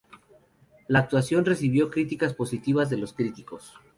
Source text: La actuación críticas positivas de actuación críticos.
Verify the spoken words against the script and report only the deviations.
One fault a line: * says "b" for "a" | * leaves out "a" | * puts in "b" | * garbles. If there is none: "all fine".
* puts in "recibió"
* says "los" for "actuación"